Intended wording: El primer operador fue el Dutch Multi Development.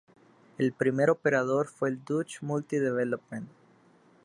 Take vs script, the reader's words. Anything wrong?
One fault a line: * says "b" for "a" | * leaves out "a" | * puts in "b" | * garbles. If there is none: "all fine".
all fine